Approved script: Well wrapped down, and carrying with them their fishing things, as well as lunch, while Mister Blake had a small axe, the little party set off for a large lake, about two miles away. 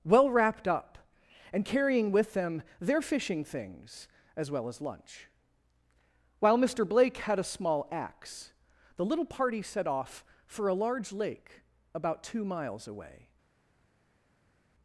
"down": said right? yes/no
no